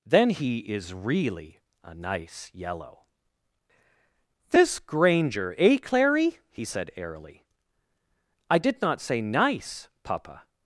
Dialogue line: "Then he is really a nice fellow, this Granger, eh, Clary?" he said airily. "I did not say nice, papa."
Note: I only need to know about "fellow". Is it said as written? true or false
false